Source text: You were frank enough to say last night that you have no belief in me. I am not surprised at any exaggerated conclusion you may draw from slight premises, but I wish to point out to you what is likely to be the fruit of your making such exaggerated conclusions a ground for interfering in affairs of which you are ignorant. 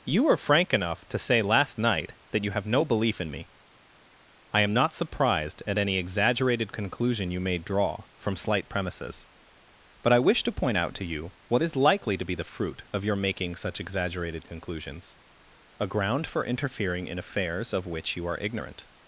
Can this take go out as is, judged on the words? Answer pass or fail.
pass